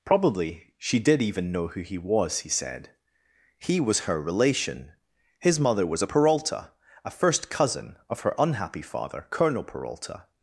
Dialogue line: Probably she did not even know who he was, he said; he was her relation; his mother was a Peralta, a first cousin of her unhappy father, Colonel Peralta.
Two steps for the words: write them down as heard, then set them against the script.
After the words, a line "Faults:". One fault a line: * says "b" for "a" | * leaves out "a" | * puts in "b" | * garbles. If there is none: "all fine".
Probably she did even know who he was, he said; he was her relation; his mother was a Peralta, a first cousin of her unhappy father, Colonel Peralta.
Faults:
* leaves out "not"